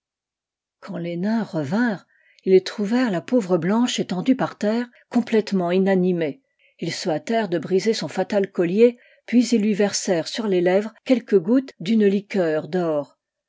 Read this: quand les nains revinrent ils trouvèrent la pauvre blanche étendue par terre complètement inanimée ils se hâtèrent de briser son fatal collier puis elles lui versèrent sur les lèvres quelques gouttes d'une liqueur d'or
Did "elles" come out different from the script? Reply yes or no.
yes